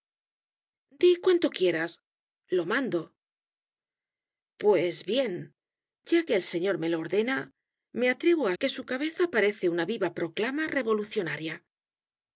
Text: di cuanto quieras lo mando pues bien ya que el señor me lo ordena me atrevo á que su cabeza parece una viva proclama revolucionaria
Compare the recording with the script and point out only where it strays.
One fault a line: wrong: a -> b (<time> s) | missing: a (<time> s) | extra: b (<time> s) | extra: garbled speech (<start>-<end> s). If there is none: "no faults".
no faults